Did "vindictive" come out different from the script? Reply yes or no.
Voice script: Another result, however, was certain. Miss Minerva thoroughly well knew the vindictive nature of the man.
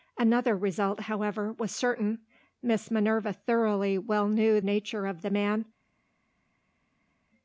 yes